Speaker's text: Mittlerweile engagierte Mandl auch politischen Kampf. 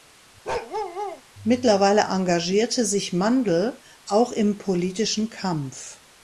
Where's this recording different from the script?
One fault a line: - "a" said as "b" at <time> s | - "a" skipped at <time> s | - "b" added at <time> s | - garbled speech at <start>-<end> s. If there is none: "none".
- "sich" added at 2.8 s
- "im" added at 4.3 s